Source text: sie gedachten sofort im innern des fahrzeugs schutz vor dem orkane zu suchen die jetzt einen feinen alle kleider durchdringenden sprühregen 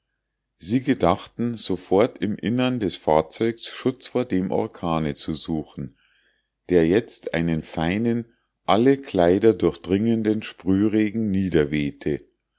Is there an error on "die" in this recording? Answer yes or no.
yes